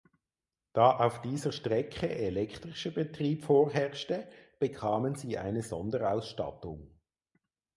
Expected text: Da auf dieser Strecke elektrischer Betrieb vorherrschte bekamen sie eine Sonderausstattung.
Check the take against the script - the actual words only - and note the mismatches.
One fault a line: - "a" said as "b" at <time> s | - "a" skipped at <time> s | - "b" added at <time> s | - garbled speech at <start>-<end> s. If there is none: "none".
none